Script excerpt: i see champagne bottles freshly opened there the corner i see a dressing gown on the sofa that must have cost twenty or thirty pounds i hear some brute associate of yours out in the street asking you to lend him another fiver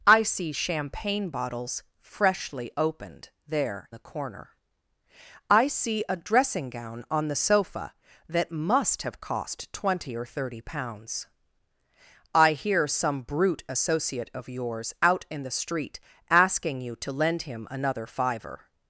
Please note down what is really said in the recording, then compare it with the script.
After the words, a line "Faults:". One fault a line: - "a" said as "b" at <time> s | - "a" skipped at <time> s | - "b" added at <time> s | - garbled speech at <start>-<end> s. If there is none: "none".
i see champagne bottles freshly opened there the corner i see a dressing gown on the sofa that must have cost twenty or thirty pounds i hear some brute associate of yours out in the street asking you to lend him another fiver
Faults:
none